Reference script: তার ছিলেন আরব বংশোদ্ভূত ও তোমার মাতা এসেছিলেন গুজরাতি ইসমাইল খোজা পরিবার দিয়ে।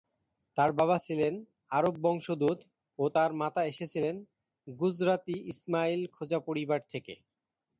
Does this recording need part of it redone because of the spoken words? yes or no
yes